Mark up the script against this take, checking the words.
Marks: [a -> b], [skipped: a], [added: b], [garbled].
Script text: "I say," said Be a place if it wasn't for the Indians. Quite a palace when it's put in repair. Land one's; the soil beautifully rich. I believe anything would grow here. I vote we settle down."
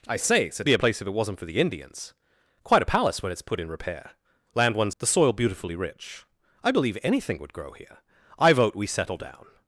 "I say," said Be a place if it wasn't for the Indians. Quite a palace when it's put in repair. Land one's; the soil beautifully rich. I believe anything would grow here. I vote we settle down."